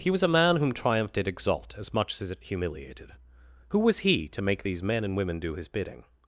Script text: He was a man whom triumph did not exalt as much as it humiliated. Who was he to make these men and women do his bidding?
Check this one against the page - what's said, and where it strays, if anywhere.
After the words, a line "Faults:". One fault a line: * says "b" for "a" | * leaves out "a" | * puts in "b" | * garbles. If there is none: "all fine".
He was a man whom triumph did exalt as much as it humiliated. Who was he to make these men and women do his bidding?
Faults:
* leaves out "not"